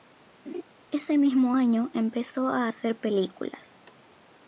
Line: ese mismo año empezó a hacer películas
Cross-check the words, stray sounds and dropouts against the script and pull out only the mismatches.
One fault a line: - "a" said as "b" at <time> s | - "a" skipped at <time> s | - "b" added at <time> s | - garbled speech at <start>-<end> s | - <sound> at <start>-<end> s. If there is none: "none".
- laugh at 0.5-0.6 s